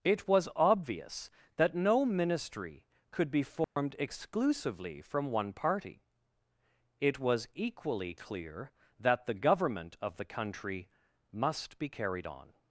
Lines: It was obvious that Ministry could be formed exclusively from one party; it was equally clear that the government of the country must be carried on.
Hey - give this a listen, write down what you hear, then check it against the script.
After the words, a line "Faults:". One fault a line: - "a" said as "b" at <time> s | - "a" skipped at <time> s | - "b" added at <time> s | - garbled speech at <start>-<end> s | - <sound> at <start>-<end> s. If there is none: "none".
It was obvious that no Ministry could be formed exclusively from one party; it was equally clear that the government of the country must be carried on.
Faults:
- "no" added at 1.8 s
- dropout at 3.6-3.8 s